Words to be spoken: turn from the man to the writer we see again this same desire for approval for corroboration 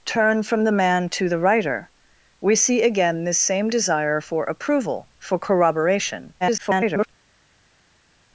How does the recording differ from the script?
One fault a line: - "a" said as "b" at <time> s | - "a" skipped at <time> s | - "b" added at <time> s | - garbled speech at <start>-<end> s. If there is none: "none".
- garbled speech at 6.4-7.1 s